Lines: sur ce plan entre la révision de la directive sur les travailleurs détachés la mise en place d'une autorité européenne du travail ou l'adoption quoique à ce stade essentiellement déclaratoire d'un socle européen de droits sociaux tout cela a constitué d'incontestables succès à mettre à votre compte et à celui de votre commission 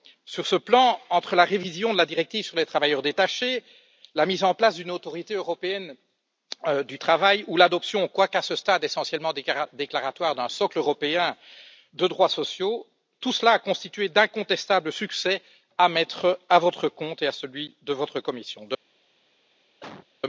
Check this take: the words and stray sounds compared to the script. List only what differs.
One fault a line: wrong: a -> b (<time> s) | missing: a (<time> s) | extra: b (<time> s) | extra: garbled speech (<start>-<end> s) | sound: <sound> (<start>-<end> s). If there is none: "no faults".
sound: cough (19.8-20.1 s)